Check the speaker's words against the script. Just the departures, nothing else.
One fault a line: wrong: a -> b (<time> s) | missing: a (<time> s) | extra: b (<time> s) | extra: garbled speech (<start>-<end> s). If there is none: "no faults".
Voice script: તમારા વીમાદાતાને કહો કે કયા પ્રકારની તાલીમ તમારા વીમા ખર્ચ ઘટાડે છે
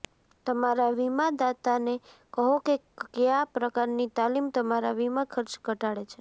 no faults